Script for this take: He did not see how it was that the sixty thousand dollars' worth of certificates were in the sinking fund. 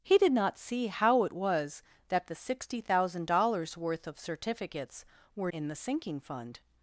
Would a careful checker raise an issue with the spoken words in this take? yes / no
no